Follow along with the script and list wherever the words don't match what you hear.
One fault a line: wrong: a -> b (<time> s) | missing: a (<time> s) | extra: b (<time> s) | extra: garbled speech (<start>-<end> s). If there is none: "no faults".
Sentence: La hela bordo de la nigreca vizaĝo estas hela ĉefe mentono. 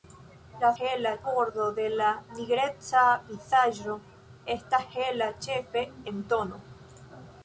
no faults